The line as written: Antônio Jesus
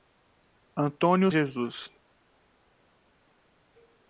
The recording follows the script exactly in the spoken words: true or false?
true